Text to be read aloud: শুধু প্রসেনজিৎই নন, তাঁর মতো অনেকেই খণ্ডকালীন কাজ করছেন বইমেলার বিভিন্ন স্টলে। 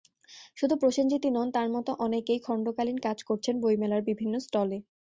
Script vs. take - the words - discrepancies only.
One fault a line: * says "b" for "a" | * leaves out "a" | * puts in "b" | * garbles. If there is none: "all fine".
all fine